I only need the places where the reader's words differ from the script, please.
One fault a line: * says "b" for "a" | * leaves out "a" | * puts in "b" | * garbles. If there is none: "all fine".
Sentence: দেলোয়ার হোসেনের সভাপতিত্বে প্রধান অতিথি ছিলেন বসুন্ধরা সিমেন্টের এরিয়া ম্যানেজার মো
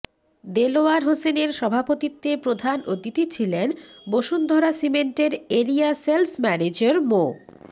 * puts in "সেলস"